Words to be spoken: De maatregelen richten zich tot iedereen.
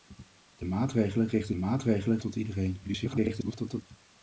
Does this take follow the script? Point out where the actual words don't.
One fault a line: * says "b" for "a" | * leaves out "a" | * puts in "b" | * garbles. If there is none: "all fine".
* says "maatregelen" for "zich"
* garbles